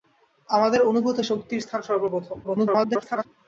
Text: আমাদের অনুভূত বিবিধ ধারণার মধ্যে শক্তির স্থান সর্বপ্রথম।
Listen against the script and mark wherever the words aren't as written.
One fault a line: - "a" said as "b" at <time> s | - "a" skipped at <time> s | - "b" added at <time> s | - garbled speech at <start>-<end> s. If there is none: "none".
- "বিবিধ ধারণার মধ্যে" skipped at 1.2 s
- garbled speech at 2.4-3.3 s